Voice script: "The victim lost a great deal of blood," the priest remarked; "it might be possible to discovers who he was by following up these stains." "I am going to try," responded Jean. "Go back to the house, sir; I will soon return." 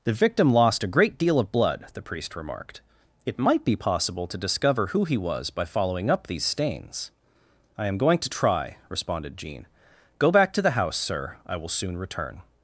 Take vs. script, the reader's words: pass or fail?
fail